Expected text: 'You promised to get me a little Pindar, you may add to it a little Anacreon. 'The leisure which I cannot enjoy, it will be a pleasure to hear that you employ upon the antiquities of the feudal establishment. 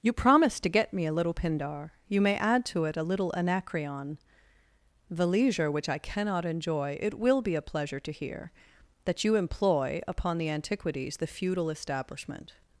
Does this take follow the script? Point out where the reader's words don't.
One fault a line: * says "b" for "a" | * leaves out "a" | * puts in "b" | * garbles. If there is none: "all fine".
* leaves out "of"